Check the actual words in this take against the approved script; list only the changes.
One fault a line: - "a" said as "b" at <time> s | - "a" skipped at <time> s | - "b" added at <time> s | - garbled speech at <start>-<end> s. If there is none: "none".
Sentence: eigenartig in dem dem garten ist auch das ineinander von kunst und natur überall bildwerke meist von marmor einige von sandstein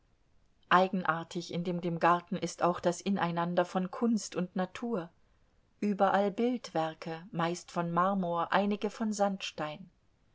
none